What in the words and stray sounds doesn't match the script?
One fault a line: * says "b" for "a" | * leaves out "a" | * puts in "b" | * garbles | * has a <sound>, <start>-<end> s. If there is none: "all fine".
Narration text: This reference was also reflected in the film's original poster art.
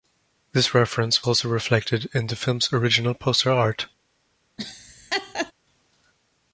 * leaves out "was"
* has a laugh, 4.6-5.5 s